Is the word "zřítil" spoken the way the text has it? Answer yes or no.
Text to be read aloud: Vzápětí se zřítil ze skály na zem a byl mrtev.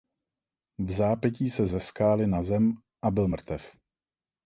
no